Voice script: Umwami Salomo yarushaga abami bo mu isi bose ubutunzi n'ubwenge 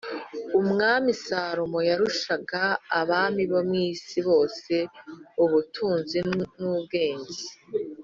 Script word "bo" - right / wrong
right